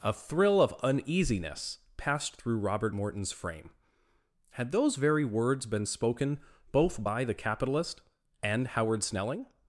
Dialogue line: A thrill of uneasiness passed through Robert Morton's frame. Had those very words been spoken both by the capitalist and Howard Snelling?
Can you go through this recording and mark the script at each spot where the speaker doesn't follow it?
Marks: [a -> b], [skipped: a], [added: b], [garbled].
A thrill of uneasiness passed through Robert Morton's frame. Had those very words been spoken both by the capitalist and Howard Snelling?